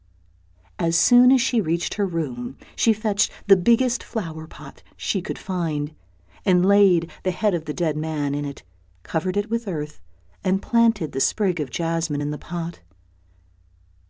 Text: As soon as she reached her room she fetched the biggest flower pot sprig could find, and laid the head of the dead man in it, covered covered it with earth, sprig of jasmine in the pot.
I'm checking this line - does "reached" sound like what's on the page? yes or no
yes